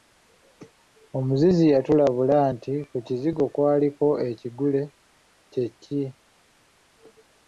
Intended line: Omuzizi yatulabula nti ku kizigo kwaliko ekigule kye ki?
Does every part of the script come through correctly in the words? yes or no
yes